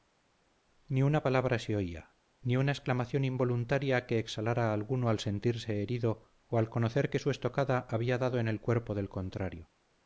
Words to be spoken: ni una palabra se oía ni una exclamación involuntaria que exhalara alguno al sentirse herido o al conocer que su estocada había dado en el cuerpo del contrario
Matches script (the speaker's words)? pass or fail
pass